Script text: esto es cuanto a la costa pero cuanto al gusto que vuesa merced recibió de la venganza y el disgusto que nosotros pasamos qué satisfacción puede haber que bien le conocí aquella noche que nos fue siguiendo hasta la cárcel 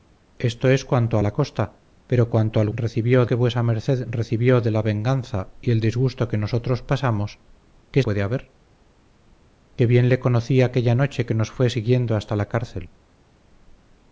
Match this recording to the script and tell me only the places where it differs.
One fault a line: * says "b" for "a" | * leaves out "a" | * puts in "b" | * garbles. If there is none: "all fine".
* says "recibió" for "gusto"
* leaves out "satisfacción"